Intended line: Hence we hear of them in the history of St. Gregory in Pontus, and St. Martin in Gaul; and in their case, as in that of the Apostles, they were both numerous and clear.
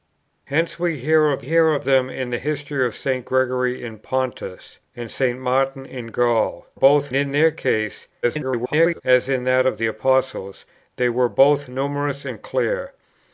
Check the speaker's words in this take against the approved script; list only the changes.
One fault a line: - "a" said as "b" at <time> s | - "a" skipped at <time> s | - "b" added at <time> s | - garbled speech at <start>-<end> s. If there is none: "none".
- "hear of" added at 1.4 s
- "and" said as "both" at 6.7 s
- garbled speech at 8.2-9.0 s